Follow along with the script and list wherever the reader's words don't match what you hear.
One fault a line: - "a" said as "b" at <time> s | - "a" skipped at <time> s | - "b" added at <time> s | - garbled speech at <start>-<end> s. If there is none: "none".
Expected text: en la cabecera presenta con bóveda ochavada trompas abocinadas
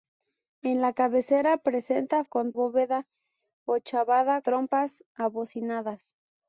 none